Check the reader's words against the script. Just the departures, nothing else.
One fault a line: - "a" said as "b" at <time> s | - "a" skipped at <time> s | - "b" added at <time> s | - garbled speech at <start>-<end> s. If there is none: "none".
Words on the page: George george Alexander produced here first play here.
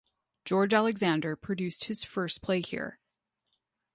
- "george" skipped at 0.7 s
- "here" said as "his" at 1.9 s